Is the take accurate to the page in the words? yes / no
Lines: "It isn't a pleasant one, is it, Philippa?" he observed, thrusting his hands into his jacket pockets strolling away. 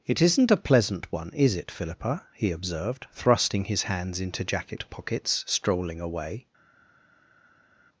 no